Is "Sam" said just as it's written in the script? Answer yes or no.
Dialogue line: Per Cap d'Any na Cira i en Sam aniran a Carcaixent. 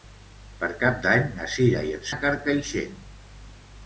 no